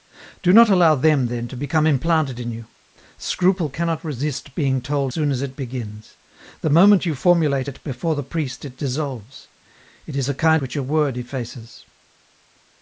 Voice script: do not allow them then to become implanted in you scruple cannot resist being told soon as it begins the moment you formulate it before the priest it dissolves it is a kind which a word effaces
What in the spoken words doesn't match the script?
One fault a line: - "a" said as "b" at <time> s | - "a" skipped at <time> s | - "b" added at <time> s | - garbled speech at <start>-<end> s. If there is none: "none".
none